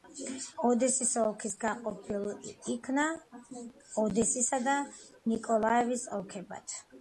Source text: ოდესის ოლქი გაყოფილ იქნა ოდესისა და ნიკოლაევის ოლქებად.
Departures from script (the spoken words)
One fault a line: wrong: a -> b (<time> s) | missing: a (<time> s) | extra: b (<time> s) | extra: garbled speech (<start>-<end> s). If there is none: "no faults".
no faults